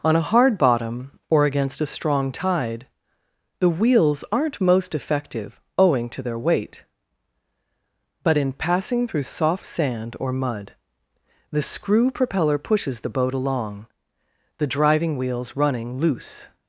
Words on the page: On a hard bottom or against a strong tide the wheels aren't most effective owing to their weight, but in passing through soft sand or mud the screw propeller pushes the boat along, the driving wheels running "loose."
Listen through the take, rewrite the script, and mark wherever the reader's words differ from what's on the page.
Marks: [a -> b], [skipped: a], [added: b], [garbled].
On a hard bottom or against a strong tide the wheels aren't most effective owing to their weight, but in passing through soft sand or mud the screw propeller pushes the boat along, the driving wheels running "loose."